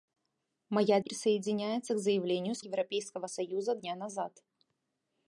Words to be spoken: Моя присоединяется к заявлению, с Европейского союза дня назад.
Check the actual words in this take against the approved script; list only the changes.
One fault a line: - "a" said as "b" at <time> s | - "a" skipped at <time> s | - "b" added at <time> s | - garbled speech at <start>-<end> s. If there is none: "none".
none